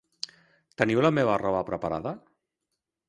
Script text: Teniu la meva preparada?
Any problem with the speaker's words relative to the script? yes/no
yes